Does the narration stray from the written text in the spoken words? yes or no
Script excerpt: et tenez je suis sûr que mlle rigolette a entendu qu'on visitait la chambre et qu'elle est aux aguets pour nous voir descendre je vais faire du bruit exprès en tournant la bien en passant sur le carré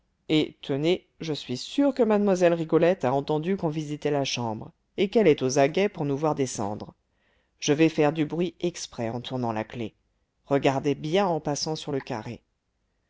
yes